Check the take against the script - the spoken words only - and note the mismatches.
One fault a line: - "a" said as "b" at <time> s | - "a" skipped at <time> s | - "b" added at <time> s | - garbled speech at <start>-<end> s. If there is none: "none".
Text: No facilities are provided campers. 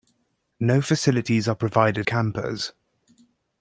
none